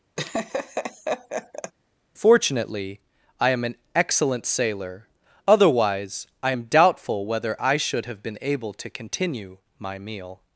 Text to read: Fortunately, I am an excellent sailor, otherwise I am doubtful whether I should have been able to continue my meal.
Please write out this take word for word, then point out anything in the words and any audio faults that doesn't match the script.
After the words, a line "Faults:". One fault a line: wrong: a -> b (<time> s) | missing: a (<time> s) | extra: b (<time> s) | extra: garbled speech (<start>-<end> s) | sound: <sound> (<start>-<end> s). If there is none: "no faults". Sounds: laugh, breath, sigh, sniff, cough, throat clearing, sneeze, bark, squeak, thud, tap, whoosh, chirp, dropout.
Fortunately, I am an excellent sailor, otherwise I am doubtful whether I should have been able to continue my meal.
Faults:
sound: laugh (0.2-1.7 s)